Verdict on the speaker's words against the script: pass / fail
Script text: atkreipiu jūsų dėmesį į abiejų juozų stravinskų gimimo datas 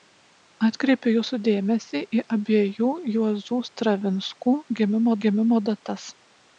fail